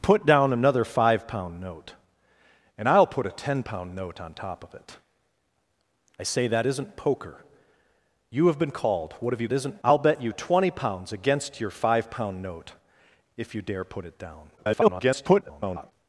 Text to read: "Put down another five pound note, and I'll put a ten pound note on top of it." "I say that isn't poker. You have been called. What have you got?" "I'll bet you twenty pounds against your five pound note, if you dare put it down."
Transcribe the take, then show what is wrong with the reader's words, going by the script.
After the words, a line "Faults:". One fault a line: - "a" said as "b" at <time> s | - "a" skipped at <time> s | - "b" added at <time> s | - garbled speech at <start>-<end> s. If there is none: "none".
"Put down another five pound note, and I'll put a ten pound note on top of it." "I say that isn't poker. You have been called. What have you isn't?" "I'll bet you twenty pounds against your five pound note, if you dare put it down." [garbled]
Faults:
- "got" said as "isn't" at 9.5 s
- garbled speech at 14.6-15.9 s